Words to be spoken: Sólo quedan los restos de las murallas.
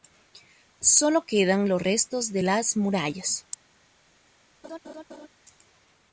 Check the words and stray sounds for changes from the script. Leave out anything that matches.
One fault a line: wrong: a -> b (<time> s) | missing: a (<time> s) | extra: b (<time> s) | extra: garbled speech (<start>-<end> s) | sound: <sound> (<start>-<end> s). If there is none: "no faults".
sound: laugh (4.6-5.3 s)